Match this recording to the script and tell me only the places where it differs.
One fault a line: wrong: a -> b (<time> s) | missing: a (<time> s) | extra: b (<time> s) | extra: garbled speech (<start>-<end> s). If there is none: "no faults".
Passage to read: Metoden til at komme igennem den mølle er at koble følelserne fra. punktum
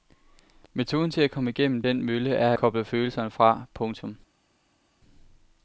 missing: at (2.5 s)